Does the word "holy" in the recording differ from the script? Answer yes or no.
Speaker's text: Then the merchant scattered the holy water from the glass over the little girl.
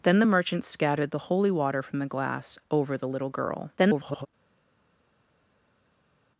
no